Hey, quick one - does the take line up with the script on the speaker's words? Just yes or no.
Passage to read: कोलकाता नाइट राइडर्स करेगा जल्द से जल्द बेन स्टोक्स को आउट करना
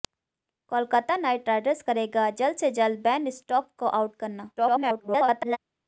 no